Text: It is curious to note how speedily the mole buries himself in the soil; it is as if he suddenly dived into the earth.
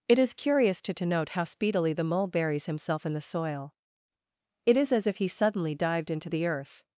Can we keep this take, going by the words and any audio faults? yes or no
no